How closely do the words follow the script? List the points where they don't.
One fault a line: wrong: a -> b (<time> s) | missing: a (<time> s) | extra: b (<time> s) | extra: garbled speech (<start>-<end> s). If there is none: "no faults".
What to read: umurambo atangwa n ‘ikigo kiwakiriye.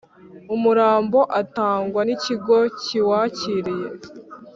no faults